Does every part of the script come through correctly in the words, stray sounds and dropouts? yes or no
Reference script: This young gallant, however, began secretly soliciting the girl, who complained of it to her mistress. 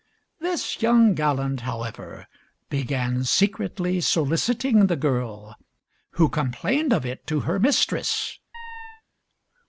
no